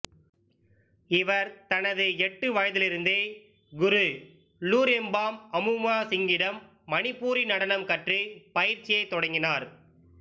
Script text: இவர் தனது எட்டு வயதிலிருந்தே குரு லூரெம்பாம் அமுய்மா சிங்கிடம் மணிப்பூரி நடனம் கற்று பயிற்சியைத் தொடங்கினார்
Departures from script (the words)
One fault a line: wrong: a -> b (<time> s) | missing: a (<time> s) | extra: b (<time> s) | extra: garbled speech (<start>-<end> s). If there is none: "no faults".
no faults